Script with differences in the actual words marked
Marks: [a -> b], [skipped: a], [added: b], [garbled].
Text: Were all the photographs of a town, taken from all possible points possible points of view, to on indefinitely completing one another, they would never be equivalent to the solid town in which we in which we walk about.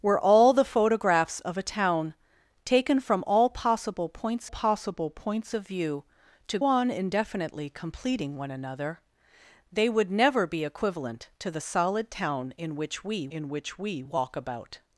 Were all the photographs of a town, taken from all possible points possible points of view, to on indefinitely completing one another, they would never be equivalent to the solid town in which we in which we walk about.